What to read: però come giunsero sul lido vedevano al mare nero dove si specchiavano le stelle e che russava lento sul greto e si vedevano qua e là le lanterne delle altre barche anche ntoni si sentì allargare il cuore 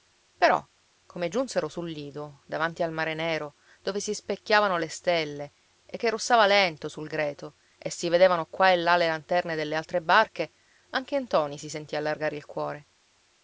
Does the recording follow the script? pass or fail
fail